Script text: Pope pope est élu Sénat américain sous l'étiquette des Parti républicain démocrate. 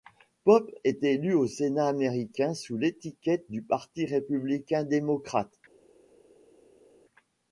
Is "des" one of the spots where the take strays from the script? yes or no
yes